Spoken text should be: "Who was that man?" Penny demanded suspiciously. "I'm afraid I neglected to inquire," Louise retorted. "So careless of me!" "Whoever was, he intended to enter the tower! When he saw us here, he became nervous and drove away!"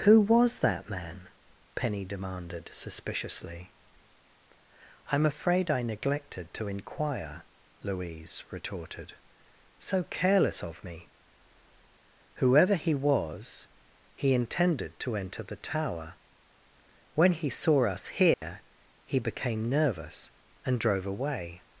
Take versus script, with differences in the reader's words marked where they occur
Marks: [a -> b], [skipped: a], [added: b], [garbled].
"Who was that man?" Penny demanded suspiciously. "I'm afraid I neglected to inquire," Louise retorted. "So careless of me!" "Whoever [added: he] was, he intended to enter the tower! When he saw us here, he became nervous and drove away!"